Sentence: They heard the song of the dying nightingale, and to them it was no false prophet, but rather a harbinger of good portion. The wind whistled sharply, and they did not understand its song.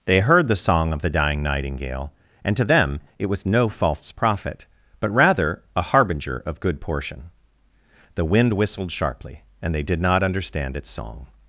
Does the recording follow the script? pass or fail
pass